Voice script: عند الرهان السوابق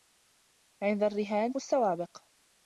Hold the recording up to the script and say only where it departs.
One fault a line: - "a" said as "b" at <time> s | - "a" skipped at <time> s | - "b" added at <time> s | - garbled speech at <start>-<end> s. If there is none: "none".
none